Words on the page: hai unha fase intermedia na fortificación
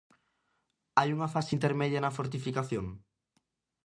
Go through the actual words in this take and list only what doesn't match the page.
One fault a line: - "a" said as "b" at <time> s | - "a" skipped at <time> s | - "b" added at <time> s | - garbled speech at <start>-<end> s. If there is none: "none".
none